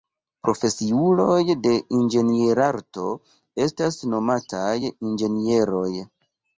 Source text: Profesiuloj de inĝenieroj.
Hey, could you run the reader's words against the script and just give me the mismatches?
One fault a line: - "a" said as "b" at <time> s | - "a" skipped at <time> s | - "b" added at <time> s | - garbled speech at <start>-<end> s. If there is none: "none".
- "inĝenierarto estas nomataj" added at 2.0 s